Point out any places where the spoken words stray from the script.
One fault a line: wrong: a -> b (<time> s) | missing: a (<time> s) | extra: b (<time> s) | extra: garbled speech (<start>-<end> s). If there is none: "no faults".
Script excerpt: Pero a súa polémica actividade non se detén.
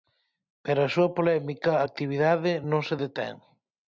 no faults